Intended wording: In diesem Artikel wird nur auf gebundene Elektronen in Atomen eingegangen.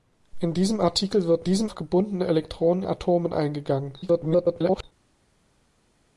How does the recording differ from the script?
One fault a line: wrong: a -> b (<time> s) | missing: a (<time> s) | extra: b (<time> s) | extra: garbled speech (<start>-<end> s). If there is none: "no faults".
wrong: nur -> diesem (1.5 s)
missing: in (2.8 s)
extra: garbled speech (4.0-4.8 s)